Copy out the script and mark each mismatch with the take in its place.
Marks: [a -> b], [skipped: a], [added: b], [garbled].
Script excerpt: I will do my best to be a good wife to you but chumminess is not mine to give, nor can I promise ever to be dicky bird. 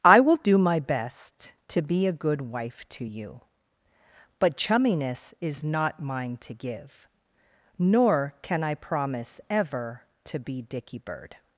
I will do my best to be a good wife to you but chumminess is not mine to give, nor can I promise ever to be dicky bird.